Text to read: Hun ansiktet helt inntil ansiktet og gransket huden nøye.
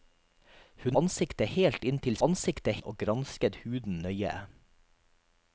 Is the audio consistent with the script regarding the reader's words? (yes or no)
yes